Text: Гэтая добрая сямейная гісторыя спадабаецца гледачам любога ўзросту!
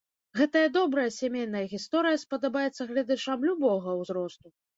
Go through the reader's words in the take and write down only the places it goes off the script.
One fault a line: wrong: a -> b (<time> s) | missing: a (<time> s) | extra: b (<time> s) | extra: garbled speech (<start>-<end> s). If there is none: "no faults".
no faults